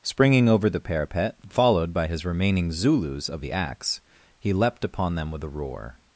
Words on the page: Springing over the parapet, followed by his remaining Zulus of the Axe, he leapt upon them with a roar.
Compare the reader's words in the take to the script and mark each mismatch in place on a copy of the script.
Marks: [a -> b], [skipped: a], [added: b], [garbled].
Springing over the parapet, followed by his remaining Zulus of the Axe, he leapt upon them with a roar.